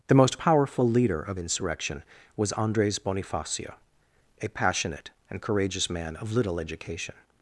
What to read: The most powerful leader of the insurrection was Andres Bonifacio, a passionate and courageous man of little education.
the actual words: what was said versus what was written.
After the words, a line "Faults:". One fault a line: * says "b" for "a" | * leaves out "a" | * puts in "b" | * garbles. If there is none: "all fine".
The most powerful leader of insurrection was Andres Bonifacio, a passionate and courageous man of little education.
Faults:
* leaves out "the"